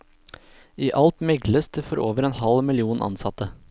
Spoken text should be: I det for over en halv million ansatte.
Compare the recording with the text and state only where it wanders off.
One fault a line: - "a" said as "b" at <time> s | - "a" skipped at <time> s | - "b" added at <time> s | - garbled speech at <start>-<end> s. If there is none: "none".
- "alt megles" added at 1.0 s